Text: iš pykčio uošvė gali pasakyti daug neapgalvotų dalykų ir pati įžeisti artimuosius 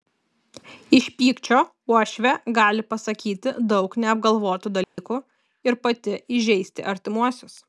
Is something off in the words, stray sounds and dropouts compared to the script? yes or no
yes